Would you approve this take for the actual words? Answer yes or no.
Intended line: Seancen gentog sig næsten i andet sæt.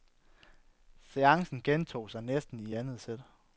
yes